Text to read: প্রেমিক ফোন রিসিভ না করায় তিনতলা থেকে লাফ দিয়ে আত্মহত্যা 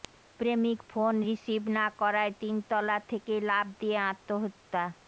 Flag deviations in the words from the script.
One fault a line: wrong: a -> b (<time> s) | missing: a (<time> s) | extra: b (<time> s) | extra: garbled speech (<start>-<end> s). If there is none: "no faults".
no faults